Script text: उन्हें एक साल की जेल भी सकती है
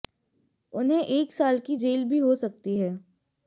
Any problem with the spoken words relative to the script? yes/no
yes